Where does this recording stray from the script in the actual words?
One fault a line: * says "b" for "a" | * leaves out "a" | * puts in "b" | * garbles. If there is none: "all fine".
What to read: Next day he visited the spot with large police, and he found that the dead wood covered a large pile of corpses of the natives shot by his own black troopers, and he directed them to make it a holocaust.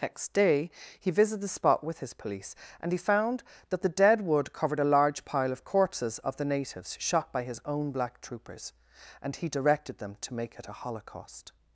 * says "his" for "large"